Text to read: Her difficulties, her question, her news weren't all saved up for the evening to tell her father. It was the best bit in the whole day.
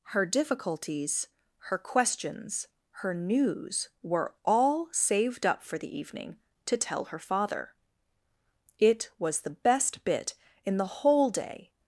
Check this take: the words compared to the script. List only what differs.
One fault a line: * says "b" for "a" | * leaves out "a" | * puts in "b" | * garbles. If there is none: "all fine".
* says "questions" for "question"
* says "were" for "weren't"